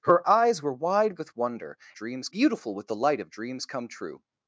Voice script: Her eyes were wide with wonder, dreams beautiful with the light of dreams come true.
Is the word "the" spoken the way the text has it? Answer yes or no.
yes